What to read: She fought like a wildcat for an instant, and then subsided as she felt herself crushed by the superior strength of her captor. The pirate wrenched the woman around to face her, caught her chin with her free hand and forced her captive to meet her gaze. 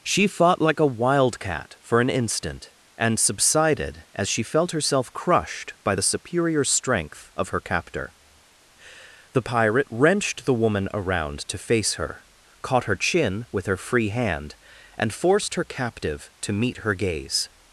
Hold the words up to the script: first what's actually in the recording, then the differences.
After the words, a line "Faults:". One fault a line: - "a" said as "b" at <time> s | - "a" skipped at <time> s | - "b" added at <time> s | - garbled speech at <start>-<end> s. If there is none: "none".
She fought like a wildcat for an instant, and subsided as she felt herself crushed by the superior strength of her captor. The pirate wrenched the woman around to face her, caught her chin with her free hand and forced her captive to meet her gaze.
Faults:
- "then" skipped at 3.2 s